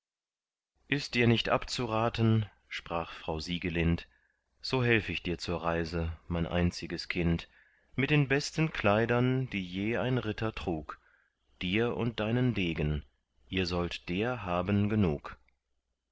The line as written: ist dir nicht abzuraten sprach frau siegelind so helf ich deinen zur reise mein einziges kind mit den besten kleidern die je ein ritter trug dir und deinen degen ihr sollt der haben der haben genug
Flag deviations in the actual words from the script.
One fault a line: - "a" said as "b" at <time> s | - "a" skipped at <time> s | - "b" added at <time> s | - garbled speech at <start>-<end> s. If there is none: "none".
- "deinen" said as "dir" at 5.2 s
- "der haben" skipped at 14.9 s